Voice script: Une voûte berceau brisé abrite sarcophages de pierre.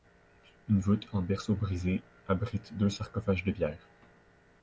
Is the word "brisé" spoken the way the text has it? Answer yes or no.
yes